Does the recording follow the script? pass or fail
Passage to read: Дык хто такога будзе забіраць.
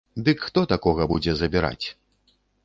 pass